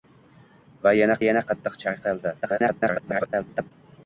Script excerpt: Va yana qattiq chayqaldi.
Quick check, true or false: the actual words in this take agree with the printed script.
false